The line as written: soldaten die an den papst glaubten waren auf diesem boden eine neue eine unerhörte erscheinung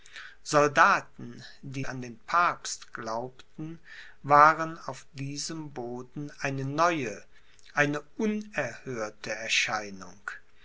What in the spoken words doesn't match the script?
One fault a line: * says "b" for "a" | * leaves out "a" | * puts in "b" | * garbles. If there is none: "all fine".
all fine